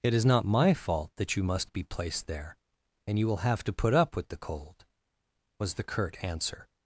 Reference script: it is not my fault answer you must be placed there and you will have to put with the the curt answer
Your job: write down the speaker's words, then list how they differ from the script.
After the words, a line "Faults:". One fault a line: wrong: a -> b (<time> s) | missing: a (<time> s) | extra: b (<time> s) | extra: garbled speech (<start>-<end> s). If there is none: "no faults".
it is not my fault that you must be placed there and you will have to put up with the cold was the curt answer
Faults:
wrong: answer -> that (1.2 s)
extra: up (3.9 s)
extra: cold was (4.4 s)